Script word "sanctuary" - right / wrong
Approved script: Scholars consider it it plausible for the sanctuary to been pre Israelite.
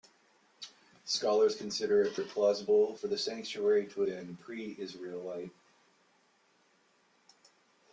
right